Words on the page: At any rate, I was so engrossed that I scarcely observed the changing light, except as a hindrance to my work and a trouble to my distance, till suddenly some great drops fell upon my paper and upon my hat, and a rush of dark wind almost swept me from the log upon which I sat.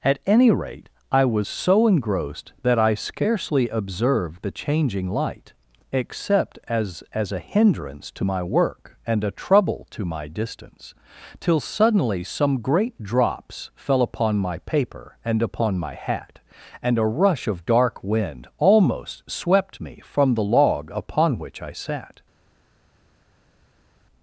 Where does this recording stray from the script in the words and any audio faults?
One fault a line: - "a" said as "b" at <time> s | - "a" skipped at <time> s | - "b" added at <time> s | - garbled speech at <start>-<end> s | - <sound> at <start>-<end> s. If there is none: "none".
- "as" added at 7.1 s